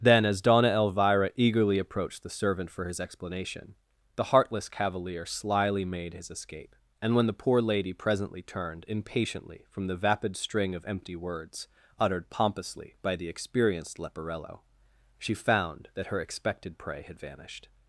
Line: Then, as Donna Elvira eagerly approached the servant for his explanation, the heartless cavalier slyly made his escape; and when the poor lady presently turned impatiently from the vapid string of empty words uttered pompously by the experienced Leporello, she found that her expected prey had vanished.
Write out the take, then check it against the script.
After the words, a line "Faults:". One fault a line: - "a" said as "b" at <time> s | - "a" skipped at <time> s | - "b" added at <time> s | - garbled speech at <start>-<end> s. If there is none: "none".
Then, as Donna Elvira eagerly approached the servant for his explanation, the heartless cavalier slyly made his escape; and when the poor lady presently turned impatiently from the vapid string of empty words uttered pompously by the experienced Leporello, she found that her expected prey had vanished.
Faults:
none